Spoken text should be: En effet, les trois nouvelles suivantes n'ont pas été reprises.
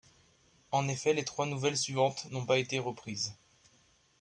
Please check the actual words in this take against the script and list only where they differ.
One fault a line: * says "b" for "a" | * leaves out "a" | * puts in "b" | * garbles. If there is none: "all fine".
all fine